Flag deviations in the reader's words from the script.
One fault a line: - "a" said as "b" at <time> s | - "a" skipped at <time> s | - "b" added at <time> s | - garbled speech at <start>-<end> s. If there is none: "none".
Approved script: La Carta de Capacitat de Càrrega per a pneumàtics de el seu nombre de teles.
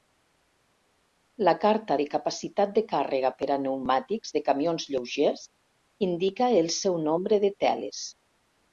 - "camions lleugers indica" added at 4.5 s